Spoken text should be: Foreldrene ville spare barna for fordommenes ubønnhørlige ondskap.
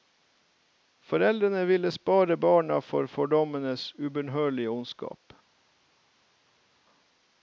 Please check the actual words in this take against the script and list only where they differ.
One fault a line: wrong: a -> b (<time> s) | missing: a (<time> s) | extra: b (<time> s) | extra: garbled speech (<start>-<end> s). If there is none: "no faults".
no faults